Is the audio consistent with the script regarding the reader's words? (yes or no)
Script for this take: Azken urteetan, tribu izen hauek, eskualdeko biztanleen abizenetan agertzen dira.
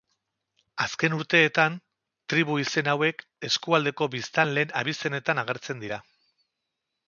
yes